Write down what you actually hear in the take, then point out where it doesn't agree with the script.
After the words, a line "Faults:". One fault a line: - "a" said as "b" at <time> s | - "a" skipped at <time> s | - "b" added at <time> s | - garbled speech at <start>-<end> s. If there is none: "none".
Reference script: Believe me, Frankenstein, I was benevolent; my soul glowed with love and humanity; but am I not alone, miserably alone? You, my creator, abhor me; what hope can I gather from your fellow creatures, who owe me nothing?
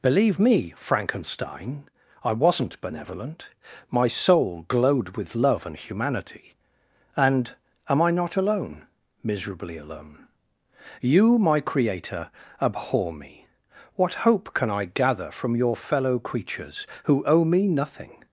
Believe me, Frankenstein, I wasn't benevolent; my soul glowed with love and humanity; and am I not alone, miserably alone? You, my creator, abhor me; what hope can I gather from your fellow creatures, who owe me nothing?
Faults:
- "was" said as "wasn't" at 2.3 s
- "but" said as "and" at 7.2 s